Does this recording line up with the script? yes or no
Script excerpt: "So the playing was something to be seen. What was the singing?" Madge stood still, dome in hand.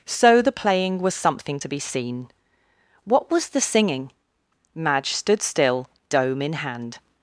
yes